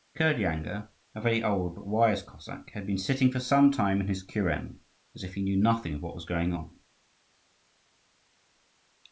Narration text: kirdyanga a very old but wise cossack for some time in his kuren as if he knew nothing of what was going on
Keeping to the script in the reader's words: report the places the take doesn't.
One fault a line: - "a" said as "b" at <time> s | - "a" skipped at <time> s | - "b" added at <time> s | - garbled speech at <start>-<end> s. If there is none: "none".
- "had been sitting" added at 2.7 s